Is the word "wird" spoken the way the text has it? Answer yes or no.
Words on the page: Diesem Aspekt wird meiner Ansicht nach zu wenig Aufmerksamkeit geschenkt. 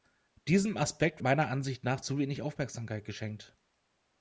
no